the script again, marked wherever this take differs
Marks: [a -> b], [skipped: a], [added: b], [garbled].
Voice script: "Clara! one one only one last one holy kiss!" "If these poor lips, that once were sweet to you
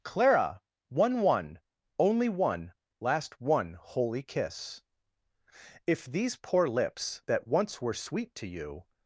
"Clara! one one only one last one holy kiss!" "If these poor lips, that once were sweet to you